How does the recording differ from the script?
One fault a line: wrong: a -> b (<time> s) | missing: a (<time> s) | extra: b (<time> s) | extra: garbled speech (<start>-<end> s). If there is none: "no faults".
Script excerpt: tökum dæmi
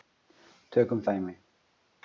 no faults